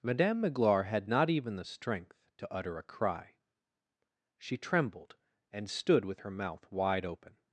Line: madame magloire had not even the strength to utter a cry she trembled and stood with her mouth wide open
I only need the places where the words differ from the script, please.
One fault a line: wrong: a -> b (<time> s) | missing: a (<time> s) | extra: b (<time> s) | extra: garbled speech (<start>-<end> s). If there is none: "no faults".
no faults